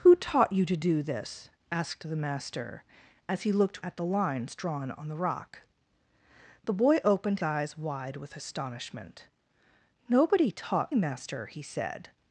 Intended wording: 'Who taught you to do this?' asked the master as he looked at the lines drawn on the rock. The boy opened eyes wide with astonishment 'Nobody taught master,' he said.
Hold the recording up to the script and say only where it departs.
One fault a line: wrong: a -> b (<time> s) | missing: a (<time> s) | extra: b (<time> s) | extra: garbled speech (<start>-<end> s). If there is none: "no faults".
no faults